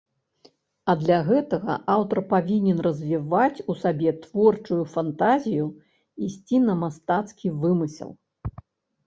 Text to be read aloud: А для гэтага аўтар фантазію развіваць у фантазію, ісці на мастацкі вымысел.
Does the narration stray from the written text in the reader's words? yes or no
yes